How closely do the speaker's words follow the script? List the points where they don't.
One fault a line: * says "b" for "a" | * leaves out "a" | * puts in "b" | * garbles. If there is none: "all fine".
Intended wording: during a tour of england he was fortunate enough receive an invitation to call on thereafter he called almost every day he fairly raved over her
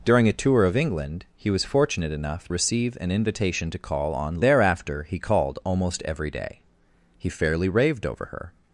all fine